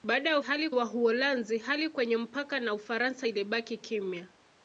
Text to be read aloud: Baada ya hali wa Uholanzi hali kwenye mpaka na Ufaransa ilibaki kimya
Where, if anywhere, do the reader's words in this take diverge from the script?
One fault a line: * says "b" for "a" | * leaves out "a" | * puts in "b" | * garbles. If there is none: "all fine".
all fine